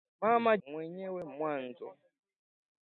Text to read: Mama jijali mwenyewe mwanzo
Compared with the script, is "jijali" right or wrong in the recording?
wrong